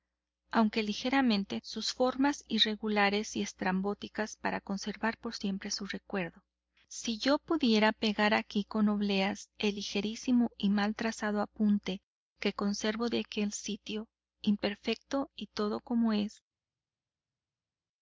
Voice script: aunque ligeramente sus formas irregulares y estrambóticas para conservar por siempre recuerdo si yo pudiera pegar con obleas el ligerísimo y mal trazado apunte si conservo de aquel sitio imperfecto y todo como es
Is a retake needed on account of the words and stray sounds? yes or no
yes